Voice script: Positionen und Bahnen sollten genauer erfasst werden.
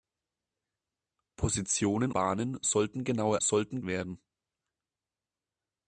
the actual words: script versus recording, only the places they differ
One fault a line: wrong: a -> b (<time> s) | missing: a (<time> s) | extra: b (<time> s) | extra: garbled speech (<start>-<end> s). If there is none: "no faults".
missing: und (2.1 s)
wrong: erfasst -> sollten (3.4 s)